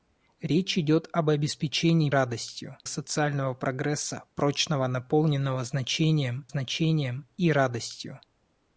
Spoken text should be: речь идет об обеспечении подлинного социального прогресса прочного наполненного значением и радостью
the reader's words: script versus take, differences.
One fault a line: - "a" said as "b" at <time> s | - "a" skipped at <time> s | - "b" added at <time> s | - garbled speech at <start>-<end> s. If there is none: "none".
- "подлинного" said as "радостью" at 2.1 s
- "значением" added at 6.5 s